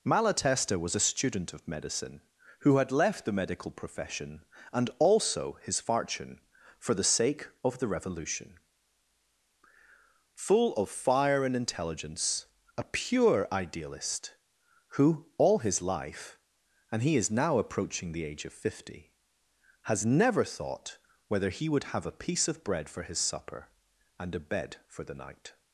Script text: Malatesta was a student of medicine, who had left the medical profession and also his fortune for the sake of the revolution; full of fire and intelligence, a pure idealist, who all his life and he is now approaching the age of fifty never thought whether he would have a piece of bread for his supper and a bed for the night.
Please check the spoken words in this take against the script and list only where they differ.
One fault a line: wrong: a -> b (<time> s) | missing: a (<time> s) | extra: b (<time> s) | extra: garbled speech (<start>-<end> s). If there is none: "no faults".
extra: has (19.8 s)